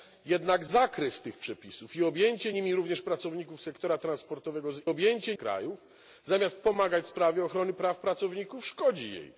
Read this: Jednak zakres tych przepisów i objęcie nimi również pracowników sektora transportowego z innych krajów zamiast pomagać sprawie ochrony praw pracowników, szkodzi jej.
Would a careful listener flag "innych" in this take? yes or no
yes